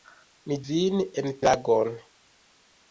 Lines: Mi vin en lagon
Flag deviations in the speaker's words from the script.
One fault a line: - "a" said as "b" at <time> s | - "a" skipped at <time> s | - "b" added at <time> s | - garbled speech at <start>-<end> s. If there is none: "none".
none